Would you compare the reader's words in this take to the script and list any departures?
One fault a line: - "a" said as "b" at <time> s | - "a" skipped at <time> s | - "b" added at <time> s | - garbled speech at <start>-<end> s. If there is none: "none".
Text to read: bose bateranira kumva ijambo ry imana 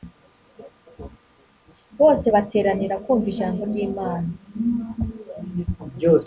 none